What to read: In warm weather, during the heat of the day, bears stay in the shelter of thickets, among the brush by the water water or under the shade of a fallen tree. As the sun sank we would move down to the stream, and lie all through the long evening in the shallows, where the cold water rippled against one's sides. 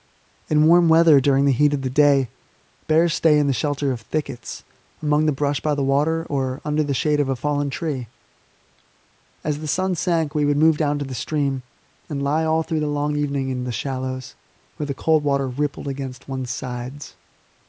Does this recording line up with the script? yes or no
no